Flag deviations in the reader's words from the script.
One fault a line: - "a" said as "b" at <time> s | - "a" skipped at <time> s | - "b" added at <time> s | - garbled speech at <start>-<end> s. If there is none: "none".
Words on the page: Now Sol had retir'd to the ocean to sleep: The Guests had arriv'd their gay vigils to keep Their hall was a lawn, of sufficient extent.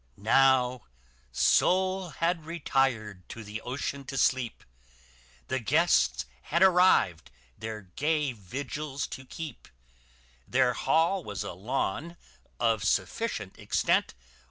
none